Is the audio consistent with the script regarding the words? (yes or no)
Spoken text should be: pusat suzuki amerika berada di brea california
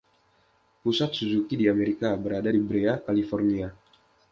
no